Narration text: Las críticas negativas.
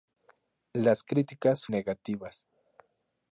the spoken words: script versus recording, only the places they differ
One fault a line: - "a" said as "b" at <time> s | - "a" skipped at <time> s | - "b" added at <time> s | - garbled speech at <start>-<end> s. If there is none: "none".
none